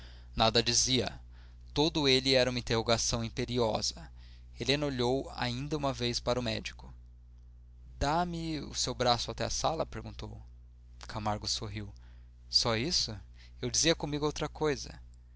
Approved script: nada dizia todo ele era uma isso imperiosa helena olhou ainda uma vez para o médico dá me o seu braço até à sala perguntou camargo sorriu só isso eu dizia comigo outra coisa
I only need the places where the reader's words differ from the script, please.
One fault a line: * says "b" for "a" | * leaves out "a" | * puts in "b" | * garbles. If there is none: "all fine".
* says "interrogação" for "isso"